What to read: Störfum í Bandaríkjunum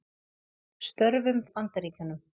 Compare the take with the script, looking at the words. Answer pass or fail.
pass